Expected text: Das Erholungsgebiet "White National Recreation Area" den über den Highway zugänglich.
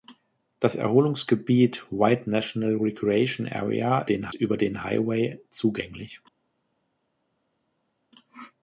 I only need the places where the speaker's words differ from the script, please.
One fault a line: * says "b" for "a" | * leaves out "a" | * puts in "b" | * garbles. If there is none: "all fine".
all fine